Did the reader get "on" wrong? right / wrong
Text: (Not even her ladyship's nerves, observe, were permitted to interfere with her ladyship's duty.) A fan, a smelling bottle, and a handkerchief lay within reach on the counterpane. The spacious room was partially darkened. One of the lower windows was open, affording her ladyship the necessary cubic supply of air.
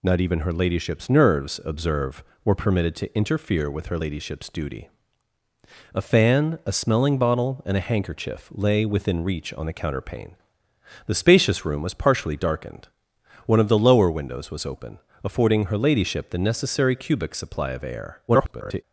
right